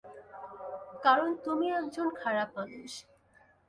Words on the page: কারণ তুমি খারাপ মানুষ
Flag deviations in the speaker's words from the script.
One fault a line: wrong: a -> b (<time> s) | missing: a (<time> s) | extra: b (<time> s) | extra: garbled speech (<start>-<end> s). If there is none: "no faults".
extra: একজন (1.8 s)